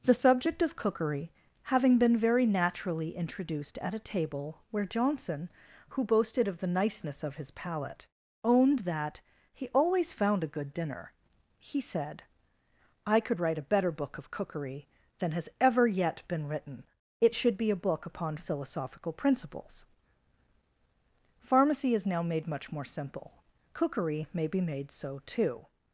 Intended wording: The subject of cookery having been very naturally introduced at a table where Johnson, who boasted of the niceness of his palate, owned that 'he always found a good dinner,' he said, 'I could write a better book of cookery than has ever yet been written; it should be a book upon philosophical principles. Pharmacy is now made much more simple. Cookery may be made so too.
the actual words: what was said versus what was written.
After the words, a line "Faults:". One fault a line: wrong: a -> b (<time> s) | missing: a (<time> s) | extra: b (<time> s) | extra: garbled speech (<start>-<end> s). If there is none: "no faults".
The subject of cookery having been very naturally introduced at a table where Johnson, who boasted of the niceness of his palate, owned that 'he always found a good dinner,' he said, 'I could write a better book of cookery than has ever yet been written; it should be a book upon philosophical principles. Pharmacy is now made much more simple. Cookery may be made so too.
Faults:
no faults